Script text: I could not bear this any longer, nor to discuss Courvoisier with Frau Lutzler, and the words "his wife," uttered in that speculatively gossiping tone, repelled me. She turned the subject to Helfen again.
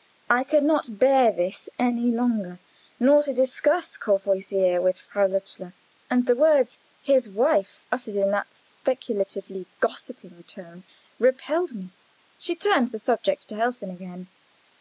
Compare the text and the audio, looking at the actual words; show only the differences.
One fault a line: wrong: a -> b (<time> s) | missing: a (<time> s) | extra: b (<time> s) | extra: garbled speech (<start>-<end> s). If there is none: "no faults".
no faults